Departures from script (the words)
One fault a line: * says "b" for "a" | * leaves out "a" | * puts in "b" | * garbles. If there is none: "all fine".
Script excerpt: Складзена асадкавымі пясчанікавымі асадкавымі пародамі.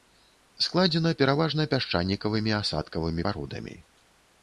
* says "пераважна" for "асадкавымі"